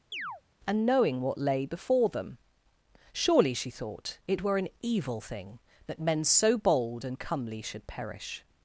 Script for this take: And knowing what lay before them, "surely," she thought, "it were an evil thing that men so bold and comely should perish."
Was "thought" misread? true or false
false